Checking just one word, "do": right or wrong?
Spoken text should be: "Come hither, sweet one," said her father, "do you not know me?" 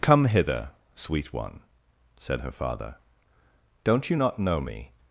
wrong